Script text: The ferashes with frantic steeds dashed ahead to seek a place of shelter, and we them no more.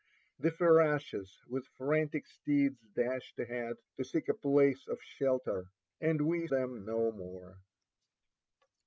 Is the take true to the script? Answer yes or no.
yes